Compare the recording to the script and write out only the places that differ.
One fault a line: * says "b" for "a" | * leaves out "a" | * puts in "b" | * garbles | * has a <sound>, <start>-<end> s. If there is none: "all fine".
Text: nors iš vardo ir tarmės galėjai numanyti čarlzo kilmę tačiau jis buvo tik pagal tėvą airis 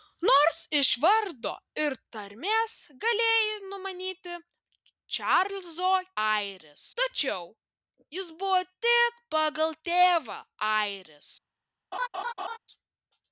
* says "airis" for "kilmę"
* has a laugh, 11.9-12.6 s